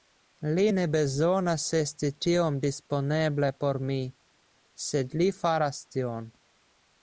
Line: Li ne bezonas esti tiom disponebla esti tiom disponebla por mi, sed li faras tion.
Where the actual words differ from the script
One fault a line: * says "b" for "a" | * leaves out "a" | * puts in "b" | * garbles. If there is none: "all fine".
* leaves out "esti tiom disponebla"